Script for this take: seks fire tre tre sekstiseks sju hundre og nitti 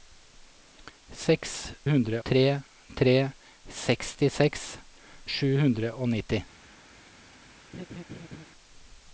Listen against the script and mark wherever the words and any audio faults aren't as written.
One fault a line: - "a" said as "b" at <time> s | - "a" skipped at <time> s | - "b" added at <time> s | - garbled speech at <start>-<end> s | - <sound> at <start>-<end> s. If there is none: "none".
- "fire" said as "hundre" at 1.9 s
- laugh at 7.7-8.4 s